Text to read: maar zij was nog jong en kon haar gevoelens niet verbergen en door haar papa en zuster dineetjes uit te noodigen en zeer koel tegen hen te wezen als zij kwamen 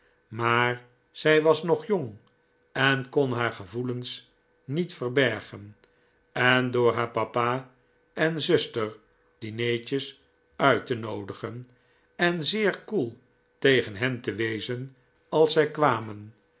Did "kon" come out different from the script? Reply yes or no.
no